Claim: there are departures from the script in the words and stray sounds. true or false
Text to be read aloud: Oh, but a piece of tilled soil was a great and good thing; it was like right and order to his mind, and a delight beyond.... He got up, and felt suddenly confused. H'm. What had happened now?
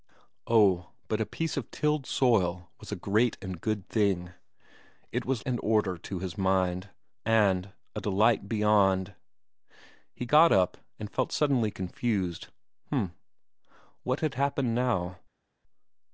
true